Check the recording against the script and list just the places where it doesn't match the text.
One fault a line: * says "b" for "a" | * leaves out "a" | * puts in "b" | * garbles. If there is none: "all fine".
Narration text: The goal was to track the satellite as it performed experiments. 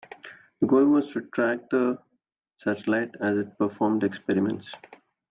all fine